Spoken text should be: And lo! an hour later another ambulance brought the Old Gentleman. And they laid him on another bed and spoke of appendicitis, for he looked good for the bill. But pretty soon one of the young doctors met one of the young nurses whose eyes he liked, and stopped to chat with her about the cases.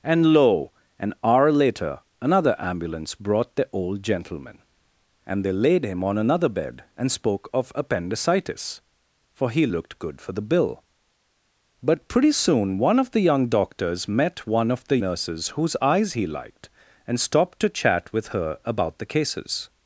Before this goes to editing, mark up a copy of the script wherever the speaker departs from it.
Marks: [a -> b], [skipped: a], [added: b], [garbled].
And lo! an hour later another ambulance brought the Old Gentleman. And they laid him on another bed and spoke of appendicitis, for he looked good for the bill. But pretty soon one of the young doctors met one of the [skipped: young] nurses whose eyes he liked, and stopped to chat with her about the cases.